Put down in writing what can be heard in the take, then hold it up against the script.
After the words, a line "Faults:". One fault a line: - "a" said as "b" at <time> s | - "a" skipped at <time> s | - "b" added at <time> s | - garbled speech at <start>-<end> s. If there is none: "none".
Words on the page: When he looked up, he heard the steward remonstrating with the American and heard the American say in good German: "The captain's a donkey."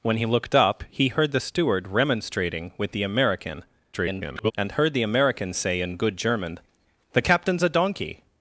When he looked up, he heard the steward remonstrating with the American [garbled] and heard the American say in good German: "The captain's a donkey."
Faults:
- garbled speech at 3.9-4.5 s